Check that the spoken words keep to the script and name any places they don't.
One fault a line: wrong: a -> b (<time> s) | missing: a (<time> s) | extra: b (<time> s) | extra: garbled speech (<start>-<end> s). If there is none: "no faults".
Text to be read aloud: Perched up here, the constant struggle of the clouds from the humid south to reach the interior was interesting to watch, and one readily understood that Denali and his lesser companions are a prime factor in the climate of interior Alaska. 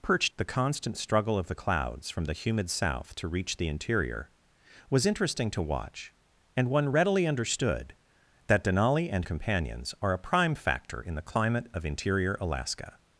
missing: up here (0.3 s)
missing: his lesser (9.3 s)